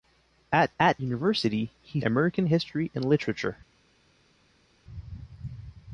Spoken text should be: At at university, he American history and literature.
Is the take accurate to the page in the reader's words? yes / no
yes